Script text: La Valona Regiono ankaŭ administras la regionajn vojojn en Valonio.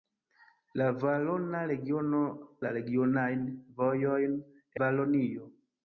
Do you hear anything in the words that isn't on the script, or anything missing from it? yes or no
yes